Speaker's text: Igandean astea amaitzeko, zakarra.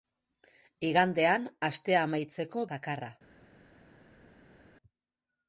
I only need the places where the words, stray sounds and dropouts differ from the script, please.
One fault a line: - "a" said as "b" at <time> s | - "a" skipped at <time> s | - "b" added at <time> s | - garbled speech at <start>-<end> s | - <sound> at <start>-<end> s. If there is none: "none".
none